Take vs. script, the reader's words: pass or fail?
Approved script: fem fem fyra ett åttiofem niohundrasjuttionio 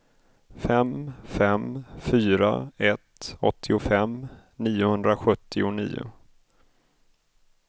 pass